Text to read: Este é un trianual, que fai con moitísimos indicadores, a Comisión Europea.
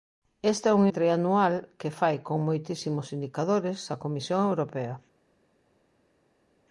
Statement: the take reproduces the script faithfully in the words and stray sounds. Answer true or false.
true